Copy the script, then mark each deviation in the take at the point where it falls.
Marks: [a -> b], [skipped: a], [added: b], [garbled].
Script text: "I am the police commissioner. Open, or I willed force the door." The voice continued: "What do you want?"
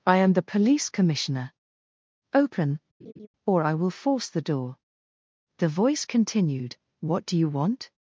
"I am the police commissioner. Open, or I [willed -> will] force the door." The voice continued: "What do you want?"